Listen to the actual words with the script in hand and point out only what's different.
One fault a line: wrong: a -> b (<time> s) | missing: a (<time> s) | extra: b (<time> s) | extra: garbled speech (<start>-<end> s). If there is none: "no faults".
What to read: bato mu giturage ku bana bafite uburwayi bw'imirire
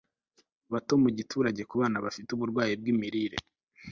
no faults